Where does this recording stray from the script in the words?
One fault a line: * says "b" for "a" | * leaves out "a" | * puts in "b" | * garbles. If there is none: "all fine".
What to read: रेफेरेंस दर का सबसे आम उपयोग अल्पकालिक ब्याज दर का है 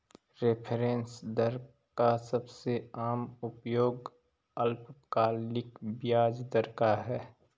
all fine